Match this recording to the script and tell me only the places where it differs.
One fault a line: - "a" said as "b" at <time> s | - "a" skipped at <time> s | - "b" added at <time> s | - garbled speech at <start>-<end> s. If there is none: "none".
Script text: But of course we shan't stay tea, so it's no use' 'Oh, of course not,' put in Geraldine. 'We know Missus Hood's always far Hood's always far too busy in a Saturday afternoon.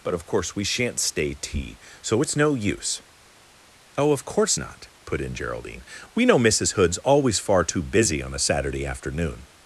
- "Hood's always far" skipped at 7.6 s
- "in" said as "on" at 8.2 s